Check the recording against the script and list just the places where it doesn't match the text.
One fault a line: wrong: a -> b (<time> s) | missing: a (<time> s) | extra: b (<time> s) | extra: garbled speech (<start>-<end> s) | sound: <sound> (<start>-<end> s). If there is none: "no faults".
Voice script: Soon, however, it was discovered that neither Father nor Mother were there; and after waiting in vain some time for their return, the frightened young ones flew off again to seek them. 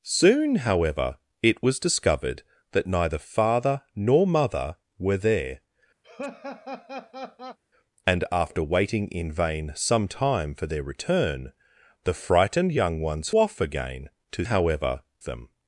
sound: laugh (6.0-7.6 s)
missing: flew (13.3 s)
wrong: seek -> however (14.4 s)